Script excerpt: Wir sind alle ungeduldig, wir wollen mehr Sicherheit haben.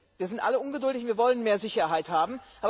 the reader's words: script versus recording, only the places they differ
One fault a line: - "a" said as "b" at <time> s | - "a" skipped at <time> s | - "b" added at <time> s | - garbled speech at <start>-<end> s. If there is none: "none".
none